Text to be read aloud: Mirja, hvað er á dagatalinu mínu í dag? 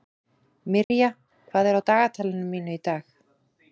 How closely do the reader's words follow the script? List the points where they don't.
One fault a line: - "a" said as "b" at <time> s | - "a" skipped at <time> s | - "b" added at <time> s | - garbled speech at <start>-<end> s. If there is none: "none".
none